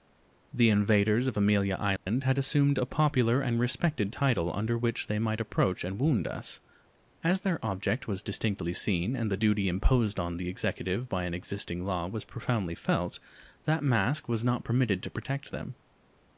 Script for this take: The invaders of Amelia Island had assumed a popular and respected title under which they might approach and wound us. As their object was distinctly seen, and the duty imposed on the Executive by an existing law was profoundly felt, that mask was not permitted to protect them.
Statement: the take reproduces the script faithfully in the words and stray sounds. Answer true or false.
false